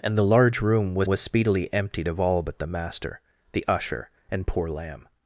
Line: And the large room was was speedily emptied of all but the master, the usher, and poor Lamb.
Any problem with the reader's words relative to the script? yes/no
no